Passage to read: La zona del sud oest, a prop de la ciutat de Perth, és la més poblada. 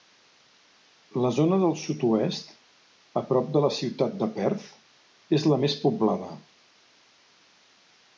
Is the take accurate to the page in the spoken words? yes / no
yes